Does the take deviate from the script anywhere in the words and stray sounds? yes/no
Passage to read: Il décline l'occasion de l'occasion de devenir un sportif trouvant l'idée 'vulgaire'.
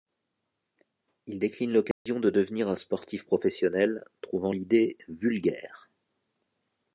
yes